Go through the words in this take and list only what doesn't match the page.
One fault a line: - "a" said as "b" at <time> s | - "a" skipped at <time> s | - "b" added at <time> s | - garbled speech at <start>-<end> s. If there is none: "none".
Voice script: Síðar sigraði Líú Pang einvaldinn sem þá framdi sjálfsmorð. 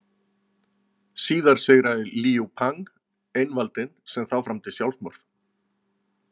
none